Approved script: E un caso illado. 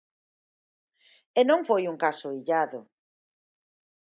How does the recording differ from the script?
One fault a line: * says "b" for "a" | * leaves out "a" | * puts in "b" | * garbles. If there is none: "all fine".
* puts in "non foi"